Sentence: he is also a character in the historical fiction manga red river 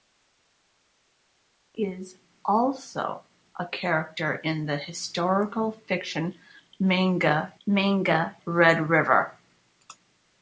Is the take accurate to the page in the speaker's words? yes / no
no